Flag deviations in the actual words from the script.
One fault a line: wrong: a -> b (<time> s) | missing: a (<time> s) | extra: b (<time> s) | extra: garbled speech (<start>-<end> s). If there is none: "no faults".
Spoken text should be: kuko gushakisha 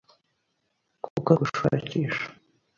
no faults